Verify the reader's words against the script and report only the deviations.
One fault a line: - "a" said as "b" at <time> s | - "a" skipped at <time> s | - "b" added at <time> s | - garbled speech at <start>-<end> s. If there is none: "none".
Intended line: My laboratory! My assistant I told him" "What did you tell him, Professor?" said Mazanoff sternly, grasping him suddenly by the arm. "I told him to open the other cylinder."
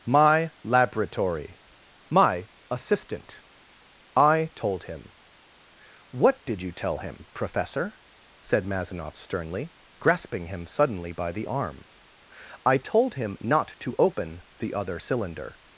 - "not" added at 13.4 s